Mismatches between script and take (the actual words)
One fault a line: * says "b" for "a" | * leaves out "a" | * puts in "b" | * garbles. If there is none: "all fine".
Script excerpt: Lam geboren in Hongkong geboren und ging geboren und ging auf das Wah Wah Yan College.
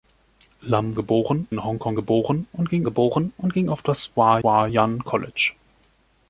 all fine